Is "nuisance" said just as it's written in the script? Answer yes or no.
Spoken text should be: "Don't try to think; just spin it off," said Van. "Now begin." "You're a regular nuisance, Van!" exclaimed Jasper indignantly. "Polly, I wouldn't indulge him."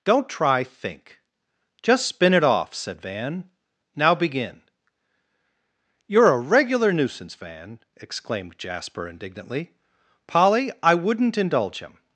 yes